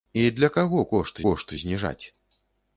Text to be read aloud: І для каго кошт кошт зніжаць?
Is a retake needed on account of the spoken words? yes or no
no